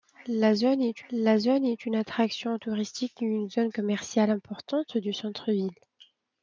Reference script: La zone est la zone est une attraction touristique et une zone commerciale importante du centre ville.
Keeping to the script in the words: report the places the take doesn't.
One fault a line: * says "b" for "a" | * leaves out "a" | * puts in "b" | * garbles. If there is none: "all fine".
all fine